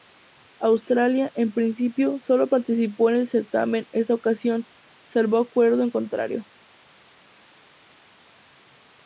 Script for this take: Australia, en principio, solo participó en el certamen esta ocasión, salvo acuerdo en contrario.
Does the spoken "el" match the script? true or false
true